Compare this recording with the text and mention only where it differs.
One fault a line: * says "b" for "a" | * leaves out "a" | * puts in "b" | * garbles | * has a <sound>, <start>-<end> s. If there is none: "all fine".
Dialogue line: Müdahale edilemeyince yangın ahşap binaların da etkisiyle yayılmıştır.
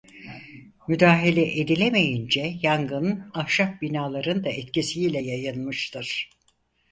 all fine